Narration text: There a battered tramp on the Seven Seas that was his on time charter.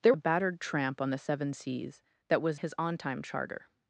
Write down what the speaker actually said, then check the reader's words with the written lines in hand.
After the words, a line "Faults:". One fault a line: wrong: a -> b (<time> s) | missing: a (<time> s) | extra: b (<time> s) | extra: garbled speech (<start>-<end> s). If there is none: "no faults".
There a battered tramp on the Seven Seas that was his on time charter.
Faults:
no faults